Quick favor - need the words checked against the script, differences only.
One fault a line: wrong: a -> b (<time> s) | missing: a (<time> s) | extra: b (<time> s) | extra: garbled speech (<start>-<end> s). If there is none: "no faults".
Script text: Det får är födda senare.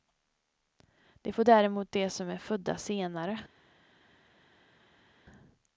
extra: däremot de som (1.4 s)